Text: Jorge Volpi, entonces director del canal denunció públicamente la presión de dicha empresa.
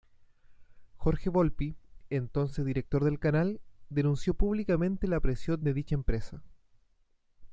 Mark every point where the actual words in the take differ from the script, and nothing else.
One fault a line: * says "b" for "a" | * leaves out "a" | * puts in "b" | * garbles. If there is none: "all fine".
all fine